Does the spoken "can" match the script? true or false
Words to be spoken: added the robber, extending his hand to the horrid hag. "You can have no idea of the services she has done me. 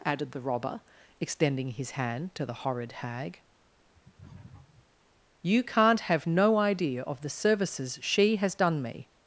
false